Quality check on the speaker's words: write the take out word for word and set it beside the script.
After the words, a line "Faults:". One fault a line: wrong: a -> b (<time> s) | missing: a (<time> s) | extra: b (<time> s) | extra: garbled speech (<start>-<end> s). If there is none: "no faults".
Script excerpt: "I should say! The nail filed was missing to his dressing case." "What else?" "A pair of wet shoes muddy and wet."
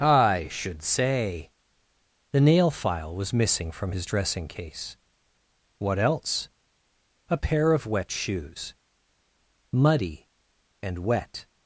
"I should say! The nail file was missing from his dressing case." "What else?" "A pair of wet shoes muddy and wet."
Faults:
wrong: filed -> file (2.7 s)
wrong: to -> from (3.7 s)